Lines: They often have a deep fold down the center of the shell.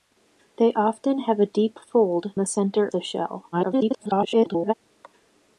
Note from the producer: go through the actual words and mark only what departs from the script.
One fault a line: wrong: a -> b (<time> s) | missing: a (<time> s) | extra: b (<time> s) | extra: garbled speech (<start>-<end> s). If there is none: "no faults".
missing: down (2.3 s)
missing: of (2.9 s)
extra: garbled speech (3.5-4.7 s)